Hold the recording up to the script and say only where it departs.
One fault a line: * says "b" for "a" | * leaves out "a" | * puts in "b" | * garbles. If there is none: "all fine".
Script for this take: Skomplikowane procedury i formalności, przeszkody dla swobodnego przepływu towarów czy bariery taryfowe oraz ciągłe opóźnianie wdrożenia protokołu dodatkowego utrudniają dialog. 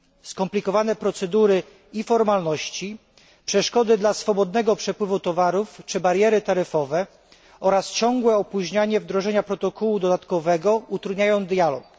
all fine